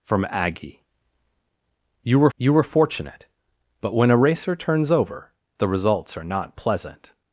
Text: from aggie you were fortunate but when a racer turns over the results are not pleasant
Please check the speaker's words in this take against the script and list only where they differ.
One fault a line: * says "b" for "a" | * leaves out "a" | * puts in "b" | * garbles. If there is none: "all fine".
* puts in "you were"